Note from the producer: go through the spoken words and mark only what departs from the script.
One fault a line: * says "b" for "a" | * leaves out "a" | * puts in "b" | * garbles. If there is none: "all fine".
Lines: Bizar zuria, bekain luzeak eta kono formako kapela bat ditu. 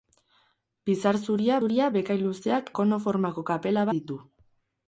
* puts in "zuria"
* leaves out "eta"
* leaves out "bat"